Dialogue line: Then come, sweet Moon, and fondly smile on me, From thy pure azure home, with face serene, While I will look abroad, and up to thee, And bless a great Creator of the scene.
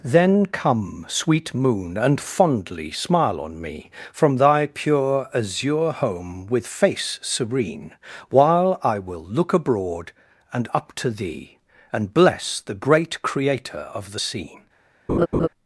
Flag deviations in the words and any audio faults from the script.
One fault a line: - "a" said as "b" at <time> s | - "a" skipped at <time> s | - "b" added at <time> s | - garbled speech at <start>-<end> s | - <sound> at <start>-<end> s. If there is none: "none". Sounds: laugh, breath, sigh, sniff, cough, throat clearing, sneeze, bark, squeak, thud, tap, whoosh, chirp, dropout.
- "a" said as "the" at 12.6 s
- laugh at 15.1-15.5 s